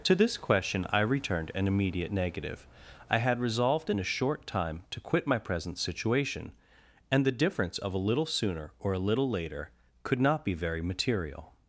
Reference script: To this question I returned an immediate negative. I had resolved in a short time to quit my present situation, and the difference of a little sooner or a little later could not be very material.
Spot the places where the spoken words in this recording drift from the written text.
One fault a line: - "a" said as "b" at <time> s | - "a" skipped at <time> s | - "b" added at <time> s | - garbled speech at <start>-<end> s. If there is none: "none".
none